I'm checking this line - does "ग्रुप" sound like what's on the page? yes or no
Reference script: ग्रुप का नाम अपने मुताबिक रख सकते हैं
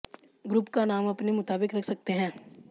yes